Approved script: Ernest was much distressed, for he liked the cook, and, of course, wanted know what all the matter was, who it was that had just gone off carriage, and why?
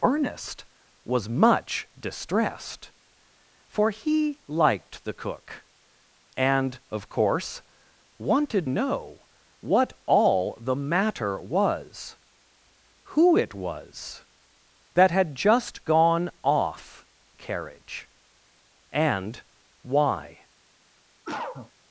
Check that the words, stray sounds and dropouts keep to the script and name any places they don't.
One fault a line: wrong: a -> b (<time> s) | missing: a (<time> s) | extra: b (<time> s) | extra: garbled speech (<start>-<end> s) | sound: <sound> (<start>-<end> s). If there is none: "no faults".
sound: cough (21.2-21.7 s)